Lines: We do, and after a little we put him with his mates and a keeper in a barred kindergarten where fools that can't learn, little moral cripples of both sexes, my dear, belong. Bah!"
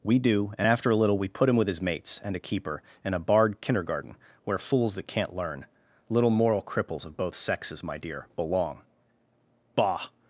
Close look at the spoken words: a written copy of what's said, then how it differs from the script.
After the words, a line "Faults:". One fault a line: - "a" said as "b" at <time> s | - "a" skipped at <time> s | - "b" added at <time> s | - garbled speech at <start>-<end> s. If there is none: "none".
We do, and after a little we put him with his mates and a keeper in a barred kindergarten where fools that can't learn, little moral cripples of both sexes, my dear, belong. Bah!"
Faults:
none